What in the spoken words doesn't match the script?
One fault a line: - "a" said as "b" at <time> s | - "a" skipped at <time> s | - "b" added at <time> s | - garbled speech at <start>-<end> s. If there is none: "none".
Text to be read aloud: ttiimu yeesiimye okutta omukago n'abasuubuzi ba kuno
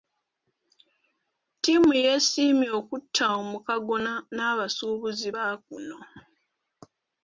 none